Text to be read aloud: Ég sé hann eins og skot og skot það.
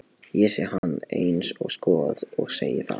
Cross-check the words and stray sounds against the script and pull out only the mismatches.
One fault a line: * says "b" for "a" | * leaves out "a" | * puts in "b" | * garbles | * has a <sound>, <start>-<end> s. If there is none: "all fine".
* has a dropout, 0.8-0.8 s
* says "segi" for "skot"